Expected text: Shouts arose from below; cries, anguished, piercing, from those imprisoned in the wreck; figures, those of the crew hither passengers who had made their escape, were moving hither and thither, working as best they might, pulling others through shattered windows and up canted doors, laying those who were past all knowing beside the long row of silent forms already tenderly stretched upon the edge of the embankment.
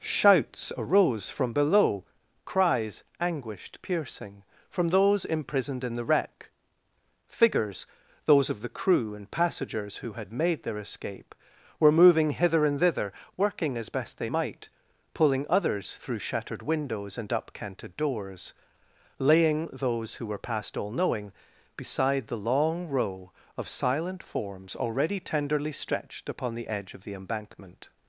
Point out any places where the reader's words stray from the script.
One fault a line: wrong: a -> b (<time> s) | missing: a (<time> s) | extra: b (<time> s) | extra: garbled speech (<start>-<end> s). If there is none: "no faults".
wrong: hither -> and (9.1 s)